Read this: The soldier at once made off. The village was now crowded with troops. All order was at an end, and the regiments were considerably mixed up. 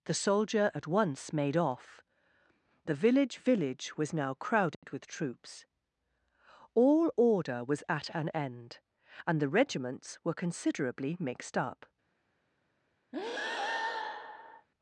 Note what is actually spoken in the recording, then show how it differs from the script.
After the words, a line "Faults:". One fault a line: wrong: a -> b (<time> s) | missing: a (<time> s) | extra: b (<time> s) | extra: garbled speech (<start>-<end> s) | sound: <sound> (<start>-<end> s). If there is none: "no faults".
The soldier at once made off. The village village was now crowded with troops. All order was at an end, and the regiments were considerably mixed up.
Faults:
extra: village (3.4 s)
sound: dropout (4.7-4.8 s)
sound: breath (13.1-14.7 s)